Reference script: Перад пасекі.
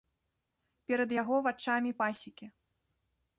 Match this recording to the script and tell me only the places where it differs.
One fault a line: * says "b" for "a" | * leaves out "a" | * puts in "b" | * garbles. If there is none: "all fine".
* puts in "яго вачамі"